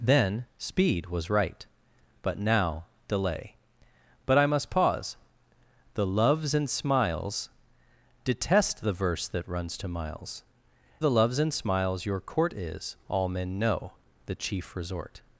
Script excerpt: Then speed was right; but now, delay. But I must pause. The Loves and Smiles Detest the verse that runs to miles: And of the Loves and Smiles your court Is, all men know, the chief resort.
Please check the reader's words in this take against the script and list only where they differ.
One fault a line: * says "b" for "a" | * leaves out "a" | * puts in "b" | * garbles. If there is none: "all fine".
* leaves out "And of"